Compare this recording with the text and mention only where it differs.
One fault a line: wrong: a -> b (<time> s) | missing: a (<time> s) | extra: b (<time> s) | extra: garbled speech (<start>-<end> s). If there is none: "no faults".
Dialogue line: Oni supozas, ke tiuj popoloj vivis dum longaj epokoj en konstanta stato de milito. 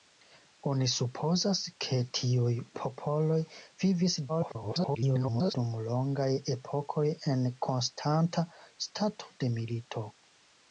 extra: garbled speech (4.3-5.5 s)